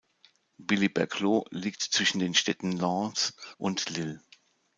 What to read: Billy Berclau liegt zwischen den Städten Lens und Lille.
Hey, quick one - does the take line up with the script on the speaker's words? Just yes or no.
yes